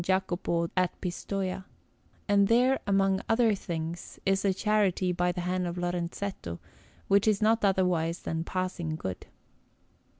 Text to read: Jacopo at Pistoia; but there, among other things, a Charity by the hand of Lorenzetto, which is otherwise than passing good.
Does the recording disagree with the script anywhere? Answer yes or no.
yes